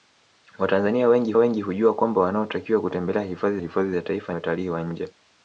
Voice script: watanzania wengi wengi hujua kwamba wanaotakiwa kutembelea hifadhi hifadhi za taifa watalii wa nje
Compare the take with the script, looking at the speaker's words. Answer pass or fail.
pass